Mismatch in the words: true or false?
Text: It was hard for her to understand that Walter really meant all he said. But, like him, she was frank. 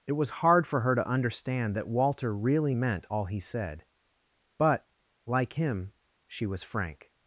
false